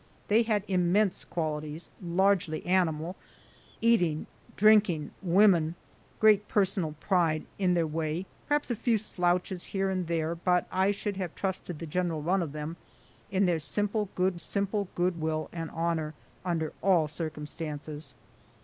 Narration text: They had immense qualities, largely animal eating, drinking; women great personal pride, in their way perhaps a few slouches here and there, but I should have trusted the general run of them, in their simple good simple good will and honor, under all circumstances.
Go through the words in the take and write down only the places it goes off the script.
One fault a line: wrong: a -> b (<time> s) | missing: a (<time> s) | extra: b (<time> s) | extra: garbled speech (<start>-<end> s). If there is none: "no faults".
no faults